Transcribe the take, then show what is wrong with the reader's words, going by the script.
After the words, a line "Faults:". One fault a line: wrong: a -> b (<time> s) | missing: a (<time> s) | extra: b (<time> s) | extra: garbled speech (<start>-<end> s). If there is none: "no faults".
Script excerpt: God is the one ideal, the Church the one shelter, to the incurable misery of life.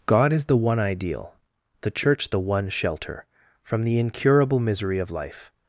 God is the one ideal, the Church the one shelter, from the incurable misery of life.
Faults:
wrong: to -> from (3.6 s)